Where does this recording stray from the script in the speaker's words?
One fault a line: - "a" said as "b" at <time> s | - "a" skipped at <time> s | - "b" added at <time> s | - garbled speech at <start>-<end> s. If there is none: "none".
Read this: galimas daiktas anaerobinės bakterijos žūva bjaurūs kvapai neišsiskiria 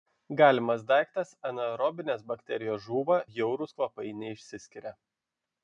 none